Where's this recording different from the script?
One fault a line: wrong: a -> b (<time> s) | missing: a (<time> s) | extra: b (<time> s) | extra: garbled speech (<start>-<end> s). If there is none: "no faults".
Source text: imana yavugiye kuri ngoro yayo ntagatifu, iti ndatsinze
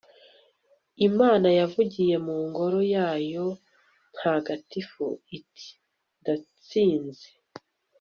wrong: kuri -> mu (2.2 s)